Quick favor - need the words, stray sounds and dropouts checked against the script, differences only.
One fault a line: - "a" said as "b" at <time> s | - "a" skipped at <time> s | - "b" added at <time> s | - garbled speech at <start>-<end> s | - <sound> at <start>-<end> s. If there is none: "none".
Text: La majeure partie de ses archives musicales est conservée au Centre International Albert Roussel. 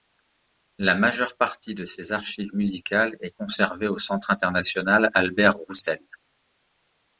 none